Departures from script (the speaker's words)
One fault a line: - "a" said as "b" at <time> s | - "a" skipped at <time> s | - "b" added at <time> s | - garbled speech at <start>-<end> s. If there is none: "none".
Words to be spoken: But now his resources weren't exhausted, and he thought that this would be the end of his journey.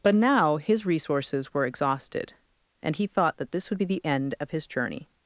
- "weren't" said as "were" at 1.5 s